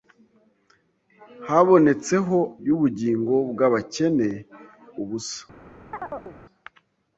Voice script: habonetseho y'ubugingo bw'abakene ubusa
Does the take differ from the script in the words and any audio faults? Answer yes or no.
yes